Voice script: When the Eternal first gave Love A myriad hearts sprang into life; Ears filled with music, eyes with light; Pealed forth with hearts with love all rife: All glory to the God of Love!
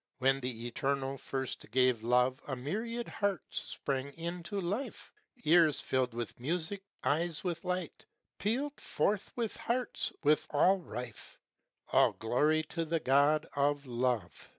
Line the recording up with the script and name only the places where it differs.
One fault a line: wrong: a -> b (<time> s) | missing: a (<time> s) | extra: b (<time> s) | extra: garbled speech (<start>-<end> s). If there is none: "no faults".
missing: love (10.5 s)